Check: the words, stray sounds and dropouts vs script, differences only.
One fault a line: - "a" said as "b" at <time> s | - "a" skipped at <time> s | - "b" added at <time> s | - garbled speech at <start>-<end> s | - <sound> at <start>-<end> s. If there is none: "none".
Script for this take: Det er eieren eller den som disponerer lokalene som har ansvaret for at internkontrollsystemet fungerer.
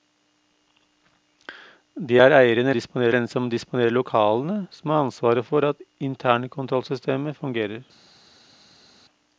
- "eller" said as "disponerer" at 2.7 s